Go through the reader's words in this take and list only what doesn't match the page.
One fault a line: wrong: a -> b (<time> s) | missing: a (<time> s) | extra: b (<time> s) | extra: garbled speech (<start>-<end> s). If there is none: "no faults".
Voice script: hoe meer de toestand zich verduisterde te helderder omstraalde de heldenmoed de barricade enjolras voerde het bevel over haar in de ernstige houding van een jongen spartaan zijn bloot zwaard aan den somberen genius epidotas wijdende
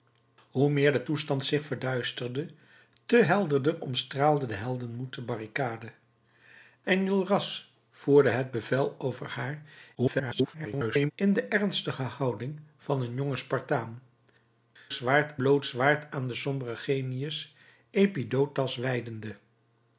extra: garbled speech (9.9-11.1 s)
wrong: zijn -> zwaard (14.9 s)